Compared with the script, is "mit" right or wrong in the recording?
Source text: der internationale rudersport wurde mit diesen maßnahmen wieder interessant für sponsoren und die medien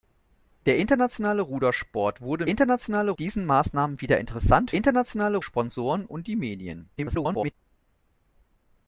wrong